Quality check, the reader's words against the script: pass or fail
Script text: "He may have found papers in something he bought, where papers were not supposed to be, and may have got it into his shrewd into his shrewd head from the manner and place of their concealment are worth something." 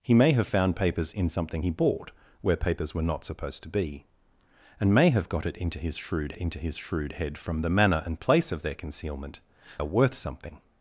pass